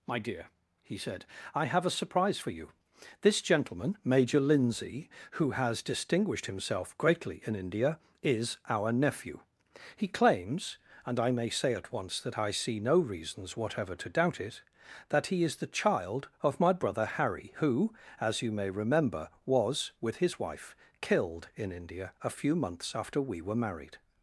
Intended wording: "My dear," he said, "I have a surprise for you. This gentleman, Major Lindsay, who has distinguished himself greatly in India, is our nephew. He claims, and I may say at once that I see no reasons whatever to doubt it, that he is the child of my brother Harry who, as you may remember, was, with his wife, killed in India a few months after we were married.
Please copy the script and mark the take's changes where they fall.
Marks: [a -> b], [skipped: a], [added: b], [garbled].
"My dear," he said, "I have a surprise for you. This gentleman, Major Lindsay, who has distinguished himself greatly in India, is our nephew. He claims, and I may say at once that I see no reasons whatever to doubt it, that he is the child of my brother Harry who, as you may remember, was, with his wife, killed in India a few months after we were married.